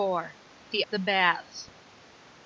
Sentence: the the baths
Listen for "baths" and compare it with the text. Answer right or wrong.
right